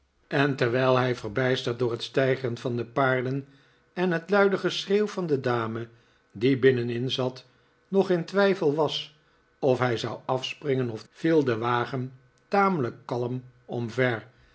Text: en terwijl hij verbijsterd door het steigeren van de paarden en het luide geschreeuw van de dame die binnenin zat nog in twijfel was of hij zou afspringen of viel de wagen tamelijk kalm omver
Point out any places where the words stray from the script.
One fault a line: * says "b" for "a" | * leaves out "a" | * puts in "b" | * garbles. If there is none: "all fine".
all fine